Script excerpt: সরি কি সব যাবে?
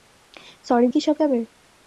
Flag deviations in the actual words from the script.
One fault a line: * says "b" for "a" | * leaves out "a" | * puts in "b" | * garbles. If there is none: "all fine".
all fine